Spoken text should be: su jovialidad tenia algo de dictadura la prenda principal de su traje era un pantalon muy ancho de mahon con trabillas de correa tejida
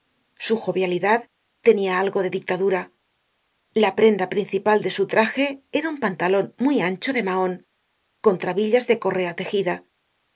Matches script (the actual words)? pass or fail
pass